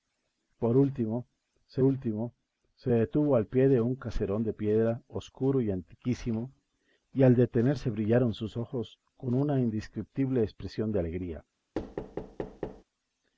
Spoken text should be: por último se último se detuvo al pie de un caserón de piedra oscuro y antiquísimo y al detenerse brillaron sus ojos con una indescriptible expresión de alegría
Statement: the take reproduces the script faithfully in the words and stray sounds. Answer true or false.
false